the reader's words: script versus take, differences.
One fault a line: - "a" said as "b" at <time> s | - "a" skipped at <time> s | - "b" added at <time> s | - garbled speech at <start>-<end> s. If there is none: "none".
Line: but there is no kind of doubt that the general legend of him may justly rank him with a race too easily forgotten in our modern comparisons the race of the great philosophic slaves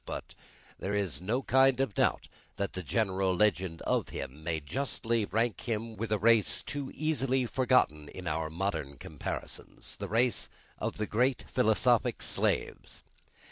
none